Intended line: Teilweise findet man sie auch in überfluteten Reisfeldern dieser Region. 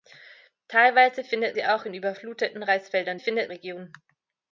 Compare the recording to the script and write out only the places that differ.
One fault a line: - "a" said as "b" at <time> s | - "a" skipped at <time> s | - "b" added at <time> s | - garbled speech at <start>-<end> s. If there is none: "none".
- "man" skipped at 1.6 s
- "dieser" said as "findet" at 3.2 s